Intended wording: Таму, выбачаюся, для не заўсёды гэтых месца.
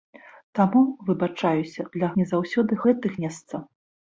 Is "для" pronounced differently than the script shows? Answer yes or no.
no